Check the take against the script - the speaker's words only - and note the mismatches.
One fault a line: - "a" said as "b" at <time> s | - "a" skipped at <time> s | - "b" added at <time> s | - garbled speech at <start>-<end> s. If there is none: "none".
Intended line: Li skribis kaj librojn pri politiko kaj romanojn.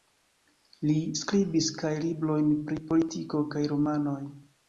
none